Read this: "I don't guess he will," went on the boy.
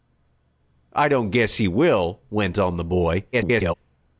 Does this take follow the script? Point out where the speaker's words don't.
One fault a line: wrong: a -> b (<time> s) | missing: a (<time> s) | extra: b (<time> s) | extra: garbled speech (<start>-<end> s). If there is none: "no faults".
extra: garbled speech (3.3-3.7 s)